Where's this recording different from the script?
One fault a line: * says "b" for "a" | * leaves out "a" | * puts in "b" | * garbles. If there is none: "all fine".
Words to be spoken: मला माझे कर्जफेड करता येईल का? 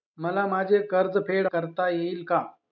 all fine